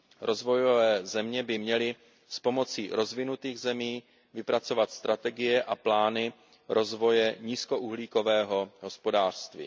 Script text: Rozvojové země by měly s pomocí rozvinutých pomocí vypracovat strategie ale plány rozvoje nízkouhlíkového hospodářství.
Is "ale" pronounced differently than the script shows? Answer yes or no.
yes